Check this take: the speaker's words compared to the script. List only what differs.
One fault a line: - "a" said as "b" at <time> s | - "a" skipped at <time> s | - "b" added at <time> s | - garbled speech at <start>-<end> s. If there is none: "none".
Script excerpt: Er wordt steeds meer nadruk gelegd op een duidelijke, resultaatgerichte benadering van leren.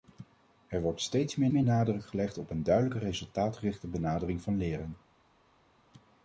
- "meer" added at 1.5 s